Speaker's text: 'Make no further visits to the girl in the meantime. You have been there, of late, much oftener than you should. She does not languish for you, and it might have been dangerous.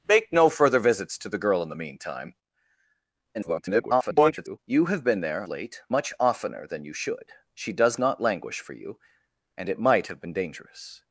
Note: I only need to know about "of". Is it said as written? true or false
false